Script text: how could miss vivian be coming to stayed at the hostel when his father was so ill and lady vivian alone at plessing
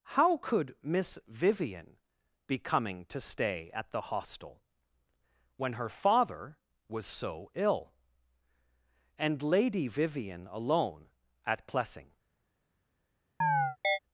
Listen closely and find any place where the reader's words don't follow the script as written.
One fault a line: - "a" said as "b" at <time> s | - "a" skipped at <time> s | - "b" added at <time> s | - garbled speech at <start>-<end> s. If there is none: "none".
- "stayed" said as "stay" at 3.2 s
- "his" said as "her" at 5.7 s